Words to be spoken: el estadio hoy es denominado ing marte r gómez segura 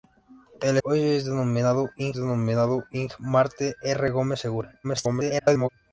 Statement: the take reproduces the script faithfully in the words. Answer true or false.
false